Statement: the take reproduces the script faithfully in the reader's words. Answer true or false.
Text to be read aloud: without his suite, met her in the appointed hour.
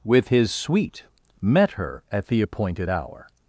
false